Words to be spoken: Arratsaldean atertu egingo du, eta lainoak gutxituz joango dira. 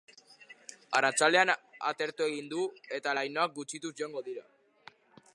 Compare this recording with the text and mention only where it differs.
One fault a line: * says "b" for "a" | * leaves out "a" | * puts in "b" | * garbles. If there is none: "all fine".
all fine